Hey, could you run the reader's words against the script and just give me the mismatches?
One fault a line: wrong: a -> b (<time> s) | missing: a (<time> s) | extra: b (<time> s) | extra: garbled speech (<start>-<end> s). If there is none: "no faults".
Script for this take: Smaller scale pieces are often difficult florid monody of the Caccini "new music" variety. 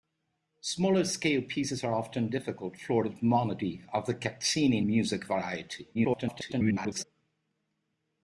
missing: new (4.8 s)
extra: garbled speech (5.9-7.0 s)